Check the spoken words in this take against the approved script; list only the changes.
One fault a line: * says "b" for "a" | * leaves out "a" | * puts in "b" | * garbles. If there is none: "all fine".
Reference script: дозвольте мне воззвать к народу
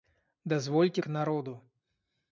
* leaves out "мне воззвать"